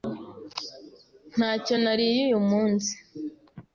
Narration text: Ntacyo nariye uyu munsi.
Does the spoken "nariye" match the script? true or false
true